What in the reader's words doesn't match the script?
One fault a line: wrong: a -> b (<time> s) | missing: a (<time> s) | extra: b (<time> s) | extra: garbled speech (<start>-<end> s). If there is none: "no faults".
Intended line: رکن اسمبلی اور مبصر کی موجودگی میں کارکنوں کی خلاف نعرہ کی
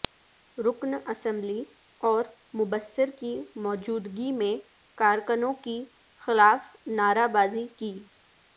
extra: بازی (7.3 s)